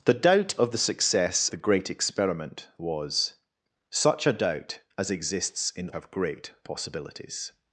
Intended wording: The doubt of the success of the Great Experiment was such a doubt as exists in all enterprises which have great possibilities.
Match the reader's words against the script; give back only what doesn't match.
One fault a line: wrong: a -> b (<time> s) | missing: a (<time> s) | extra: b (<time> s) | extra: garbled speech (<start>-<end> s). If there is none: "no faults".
missing: of (1.5 s)
missing: all enterprises which (5.9 s)